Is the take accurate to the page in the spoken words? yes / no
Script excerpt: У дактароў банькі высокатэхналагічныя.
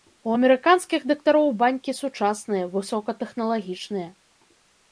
no